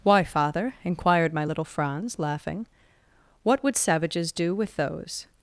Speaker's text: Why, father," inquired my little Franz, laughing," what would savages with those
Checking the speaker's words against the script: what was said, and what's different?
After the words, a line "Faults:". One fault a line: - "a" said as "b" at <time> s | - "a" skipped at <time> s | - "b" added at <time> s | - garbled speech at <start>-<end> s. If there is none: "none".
Why, father," inquired my little Franz, laughing," what would savages do with those
Faults:
- "do" added at 4.3 s